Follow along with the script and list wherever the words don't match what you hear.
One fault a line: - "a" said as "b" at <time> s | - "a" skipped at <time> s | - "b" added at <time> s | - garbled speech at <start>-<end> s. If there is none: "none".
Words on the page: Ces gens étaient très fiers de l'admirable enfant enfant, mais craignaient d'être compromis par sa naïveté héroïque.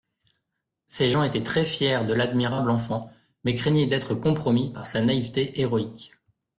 - "enfant" skipped at 3.1 s